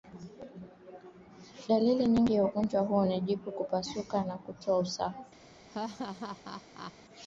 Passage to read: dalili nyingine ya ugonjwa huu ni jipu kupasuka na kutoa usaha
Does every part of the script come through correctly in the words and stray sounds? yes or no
no